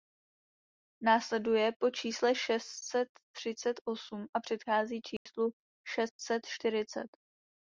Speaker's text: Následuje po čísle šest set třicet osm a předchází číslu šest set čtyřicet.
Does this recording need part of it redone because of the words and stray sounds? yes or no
yes